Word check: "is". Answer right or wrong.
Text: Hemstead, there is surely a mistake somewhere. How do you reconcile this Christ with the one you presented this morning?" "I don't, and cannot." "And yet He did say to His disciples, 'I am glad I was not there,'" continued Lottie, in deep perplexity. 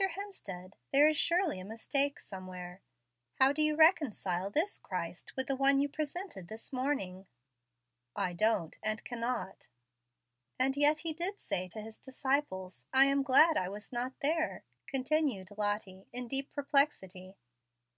right